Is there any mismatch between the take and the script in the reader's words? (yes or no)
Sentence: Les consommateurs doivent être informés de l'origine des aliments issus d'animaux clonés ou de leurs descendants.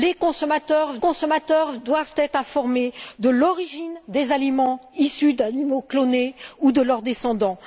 yes